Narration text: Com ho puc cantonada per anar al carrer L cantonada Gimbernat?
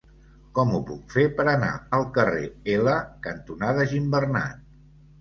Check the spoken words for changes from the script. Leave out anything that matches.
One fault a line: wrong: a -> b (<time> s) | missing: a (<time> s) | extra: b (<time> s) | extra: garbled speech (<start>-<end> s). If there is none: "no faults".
wrong: cantonada -> fer (1.1 s)